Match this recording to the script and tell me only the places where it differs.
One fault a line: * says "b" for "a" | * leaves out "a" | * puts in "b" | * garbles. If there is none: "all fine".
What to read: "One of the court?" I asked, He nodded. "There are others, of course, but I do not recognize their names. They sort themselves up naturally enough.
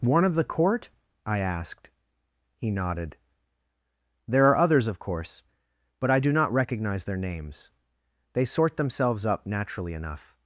all fine